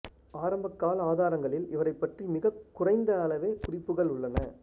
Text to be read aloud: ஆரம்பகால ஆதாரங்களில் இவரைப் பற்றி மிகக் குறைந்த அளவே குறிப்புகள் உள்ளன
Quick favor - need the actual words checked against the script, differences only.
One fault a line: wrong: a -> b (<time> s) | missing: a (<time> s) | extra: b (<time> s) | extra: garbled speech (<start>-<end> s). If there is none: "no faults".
no faults